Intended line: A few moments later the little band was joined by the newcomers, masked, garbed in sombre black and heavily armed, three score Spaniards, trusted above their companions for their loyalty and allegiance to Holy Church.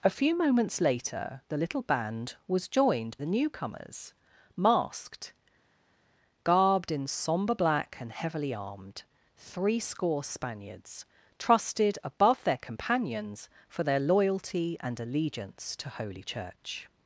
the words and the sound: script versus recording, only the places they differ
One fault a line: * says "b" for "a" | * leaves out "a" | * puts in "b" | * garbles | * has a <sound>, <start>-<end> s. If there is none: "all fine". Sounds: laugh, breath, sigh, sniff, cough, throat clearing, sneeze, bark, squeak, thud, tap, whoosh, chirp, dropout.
* leaves out "by"